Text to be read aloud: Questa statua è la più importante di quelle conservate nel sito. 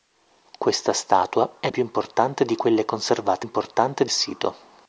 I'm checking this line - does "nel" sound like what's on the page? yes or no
no